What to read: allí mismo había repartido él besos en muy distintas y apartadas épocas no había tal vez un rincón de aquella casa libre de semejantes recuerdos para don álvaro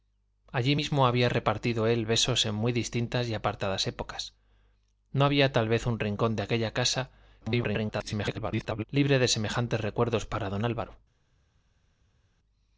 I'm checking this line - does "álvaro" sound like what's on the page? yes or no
yes